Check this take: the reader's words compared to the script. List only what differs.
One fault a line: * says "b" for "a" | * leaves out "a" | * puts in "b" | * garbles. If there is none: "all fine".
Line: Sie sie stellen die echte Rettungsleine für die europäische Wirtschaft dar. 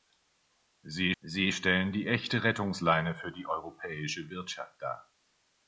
all fine